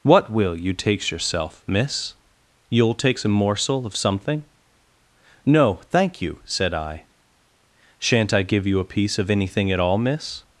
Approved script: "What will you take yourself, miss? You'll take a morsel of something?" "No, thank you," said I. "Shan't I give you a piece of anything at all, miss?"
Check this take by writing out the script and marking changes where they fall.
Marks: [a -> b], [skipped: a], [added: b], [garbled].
"What will you [take -> takes] yourself, miss? You'll [take -> takes] a morsel of something?" "No, thank you," said I. "Shan't I give you a piece of anything at all, miss?"